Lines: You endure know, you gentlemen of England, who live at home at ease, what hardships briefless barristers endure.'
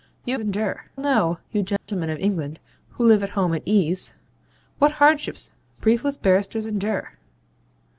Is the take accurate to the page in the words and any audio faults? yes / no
no